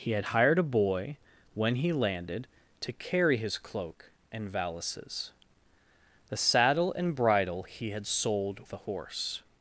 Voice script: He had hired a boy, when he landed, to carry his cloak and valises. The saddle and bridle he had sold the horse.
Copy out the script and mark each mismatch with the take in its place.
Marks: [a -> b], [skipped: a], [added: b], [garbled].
He had hired a boy, when he landed, to carry his cloak and valises. The saddle and bridle he had sold the horse.